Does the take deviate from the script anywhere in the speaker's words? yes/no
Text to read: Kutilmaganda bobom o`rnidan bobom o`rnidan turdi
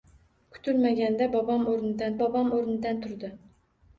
no